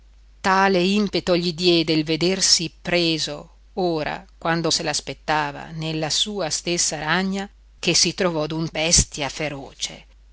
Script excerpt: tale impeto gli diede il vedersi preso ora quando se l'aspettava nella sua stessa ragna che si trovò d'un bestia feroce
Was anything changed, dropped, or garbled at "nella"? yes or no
no